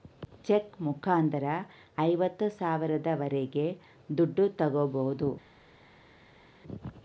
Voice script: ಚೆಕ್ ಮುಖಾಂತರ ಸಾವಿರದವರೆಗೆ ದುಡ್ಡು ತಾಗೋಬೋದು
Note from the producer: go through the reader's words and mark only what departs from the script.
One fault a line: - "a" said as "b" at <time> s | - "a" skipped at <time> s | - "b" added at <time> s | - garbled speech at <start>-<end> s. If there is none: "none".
- "ಐವತ್ತು" added at 2.0 s